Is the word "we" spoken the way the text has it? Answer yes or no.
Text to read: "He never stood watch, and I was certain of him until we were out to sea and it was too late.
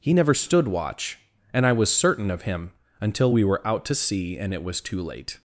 yes